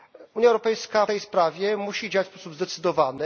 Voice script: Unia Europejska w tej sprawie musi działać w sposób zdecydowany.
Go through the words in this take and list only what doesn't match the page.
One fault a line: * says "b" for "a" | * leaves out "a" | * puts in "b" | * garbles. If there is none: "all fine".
* leaves out "w"